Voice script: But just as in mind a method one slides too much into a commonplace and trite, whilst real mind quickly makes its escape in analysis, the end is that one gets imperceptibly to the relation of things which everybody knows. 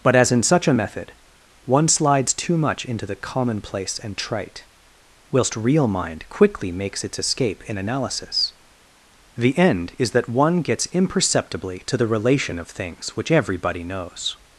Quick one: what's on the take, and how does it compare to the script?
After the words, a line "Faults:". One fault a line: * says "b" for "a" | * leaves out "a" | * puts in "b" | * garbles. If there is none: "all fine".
But as in such a method one slides too much into the commonplace and trite, whilst real mind quickly makes its escape in analysis, the end is that one gets imperceptibly to the relation of things which everybody knows.
Faults:
* leaves out "just"
* says "such" for "mind"
* says "the" for "a"